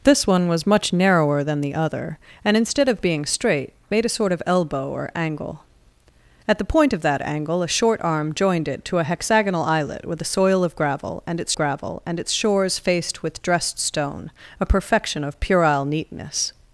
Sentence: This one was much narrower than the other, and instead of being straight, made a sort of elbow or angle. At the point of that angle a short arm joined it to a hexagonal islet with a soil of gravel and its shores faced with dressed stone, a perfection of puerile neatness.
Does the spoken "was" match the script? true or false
true